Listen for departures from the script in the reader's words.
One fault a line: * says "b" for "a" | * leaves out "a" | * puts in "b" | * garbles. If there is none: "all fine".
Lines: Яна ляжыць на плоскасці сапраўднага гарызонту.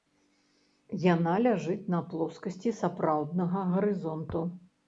all fine